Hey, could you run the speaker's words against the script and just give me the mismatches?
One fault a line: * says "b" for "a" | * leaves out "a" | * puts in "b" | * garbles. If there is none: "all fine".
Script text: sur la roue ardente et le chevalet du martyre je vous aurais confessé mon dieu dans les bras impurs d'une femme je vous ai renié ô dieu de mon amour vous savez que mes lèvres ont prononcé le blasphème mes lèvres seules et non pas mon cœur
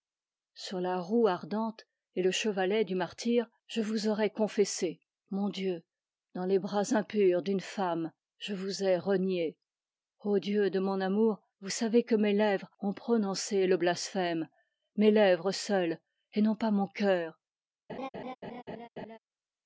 all fine